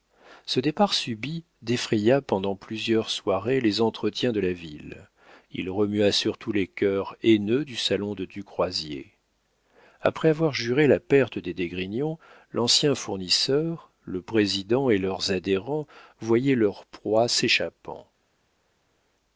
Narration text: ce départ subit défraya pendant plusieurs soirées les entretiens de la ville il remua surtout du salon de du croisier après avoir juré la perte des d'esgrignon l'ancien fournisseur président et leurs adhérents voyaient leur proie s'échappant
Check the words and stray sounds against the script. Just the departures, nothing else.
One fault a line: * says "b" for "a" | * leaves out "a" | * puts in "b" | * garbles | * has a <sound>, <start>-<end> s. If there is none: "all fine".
* puts in "les cœurs haineux"
* puts in "le"